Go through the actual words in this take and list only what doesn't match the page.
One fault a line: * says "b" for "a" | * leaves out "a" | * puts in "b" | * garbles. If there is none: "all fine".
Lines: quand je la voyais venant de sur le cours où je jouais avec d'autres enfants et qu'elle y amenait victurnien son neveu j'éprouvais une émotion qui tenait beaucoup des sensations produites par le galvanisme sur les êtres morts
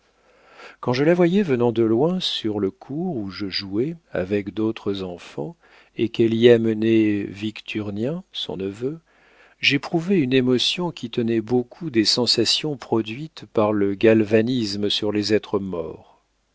* puts in "loin"